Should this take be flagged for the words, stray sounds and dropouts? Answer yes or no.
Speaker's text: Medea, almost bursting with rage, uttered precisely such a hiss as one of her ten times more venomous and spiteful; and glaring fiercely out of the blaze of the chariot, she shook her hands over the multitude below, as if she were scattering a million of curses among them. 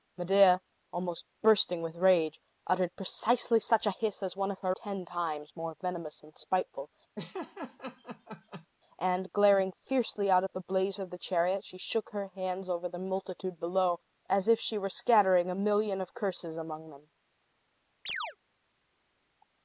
yes